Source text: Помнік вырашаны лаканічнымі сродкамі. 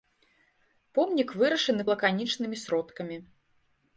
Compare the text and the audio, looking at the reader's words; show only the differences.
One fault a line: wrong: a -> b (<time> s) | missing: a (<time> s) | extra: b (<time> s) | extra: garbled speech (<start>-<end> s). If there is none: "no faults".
no faults